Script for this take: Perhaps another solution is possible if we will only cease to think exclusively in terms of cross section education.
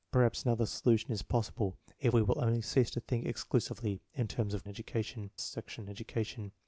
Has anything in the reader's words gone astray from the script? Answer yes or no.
yes